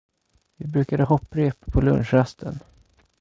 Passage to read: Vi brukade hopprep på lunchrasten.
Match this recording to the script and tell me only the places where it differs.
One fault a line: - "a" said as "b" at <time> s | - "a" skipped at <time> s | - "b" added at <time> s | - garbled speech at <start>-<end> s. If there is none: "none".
none